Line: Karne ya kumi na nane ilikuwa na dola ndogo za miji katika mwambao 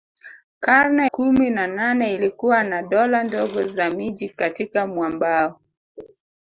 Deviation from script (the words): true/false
true